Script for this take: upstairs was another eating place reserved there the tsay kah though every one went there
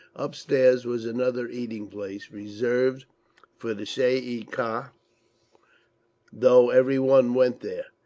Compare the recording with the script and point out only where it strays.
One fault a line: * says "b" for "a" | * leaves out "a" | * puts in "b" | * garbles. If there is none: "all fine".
* says "for" for "there"
* puts in "ee"